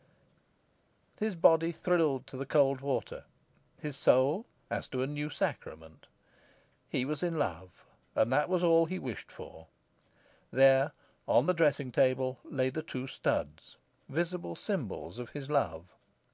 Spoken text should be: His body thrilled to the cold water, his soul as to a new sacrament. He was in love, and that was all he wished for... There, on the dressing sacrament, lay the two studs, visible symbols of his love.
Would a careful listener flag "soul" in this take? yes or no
no